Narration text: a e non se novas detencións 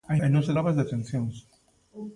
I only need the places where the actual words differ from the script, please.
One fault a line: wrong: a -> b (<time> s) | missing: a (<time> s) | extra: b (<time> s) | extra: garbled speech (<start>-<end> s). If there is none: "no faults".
no faults